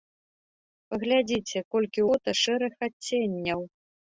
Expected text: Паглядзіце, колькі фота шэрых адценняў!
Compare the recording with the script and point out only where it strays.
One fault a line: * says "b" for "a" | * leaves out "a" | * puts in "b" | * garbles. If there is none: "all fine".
all fine